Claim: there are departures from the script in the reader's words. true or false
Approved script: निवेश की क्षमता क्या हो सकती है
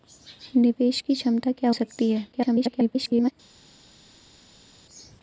true